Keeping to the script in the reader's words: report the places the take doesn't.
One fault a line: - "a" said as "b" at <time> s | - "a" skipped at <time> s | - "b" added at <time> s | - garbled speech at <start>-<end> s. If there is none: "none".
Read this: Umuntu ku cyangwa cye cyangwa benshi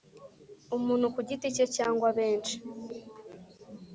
- "cyangwa" said as "giti" at 1.3 s